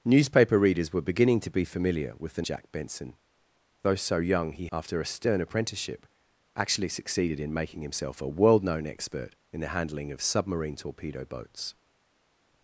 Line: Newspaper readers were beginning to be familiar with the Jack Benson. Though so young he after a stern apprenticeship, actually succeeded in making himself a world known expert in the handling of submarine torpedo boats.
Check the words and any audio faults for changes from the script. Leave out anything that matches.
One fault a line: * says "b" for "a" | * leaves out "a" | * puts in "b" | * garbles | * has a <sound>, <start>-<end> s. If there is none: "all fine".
all fine